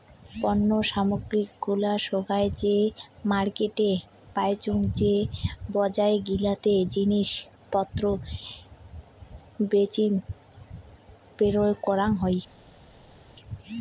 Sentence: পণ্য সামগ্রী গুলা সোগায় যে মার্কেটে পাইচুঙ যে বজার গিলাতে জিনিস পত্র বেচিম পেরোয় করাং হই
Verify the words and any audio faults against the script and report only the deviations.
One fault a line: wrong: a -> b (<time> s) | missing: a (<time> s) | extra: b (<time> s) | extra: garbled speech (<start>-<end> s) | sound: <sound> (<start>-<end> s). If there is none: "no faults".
no faults